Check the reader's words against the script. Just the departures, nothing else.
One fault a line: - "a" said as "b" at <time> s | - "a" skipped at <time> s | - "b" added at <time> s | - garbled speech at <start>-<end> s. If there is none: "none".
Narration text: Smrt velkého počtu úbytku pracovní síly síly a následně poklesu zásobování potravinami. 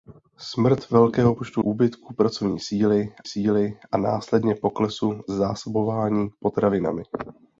none